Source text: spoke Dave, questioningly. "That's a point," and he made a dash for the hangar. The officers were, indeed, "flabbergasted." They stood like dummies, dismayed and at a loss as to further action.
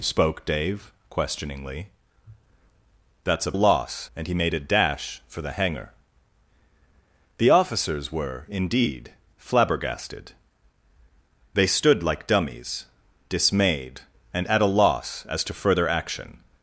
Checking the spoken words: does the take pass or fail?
fail